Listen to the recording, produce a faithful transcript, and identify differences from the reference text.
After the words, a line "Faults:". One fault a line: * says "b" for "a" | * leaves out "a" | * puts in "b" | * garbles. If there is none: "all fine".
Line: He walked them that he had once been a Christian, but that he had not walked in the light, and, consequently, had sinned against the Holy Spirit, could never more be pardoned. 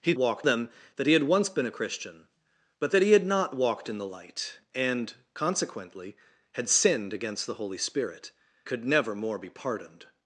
He walked them that he had once been a Christian, but that he had not walked in the light, and, consequently, had sinned against the Holy Spirit, could never more be pardoned.
Faults:
all fine